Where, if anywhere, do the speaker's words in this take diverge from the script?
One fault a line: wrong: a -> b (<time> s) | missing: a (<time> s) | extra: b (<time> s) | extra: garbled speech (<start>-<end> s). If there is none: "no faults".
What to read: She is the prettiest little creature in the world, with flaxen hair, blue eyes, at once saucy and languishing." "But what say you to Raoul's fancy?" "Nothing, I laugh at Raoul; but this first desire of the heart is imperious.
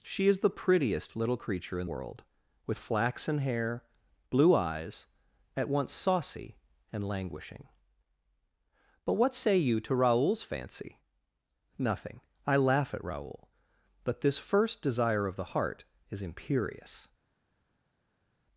missing: the (1.9 s)